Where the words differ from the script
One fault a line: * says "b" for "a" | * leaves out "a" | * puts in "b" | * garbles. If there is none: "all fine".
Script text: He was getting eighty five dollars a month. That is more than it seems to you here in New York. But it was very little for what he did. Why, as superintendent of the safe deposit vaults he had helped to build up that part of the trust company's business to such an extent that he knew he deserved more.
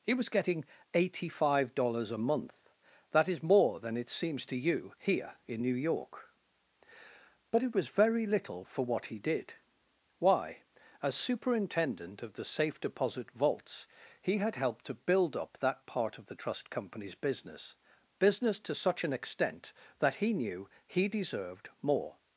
* puts in "business"